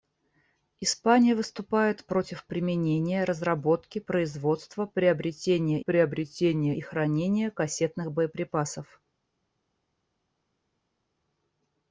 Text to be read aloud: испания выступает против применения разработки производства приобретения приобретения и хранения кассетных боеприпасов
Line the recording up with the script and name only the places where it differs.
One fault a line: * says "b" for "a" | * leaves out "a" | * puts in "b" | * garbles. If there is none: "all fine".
all fine